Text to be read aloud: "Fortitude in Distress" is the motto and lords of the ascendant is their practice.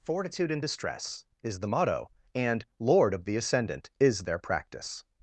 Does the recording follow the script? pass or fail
fail